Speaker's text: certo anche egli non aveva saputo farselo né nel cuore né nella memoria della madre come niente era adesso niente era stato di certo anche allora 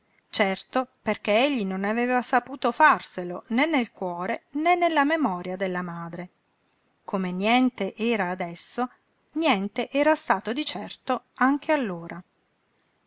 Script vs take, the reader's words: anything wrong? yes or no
yes